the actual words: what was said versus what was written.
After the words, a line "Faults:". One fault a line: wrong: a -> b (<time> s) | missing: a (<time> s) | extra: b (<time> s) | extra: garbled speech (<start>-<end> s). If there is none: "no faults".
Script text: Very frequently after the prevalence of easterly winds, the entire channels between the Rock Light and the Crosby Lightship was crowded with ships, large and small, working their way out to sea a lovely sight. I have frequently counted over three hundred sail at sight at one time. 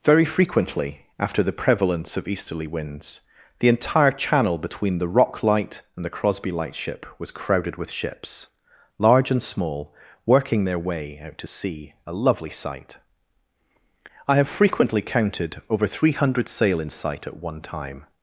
Very frequently after the prevalence of easterly winds, the entire channel between the Rock Light and the Crosby Lightship was crowded with ships, large and small, working their way out to sea a lovely sight. I have frequently counted over three hundred sail in sight at one time.
Faults:
wrong: channels -> channel (4.1 s)
wrong: at -> in (16.8 s)